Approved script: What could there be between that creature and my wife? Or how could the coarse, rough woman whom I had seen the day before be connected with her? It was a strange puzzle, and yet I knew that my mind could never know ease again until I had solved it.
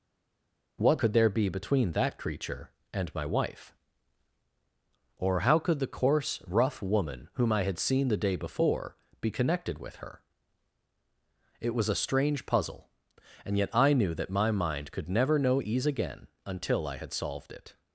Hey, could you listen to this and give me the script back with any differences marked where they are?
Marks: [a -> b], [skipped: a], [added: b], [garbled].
What could there be between that creature and my wife? Or how could the coarse, rough woman whom I had seen the day before be connected with her? It was a strange puzzle, and yet I knew that my mind could never know ease again until I had solved it.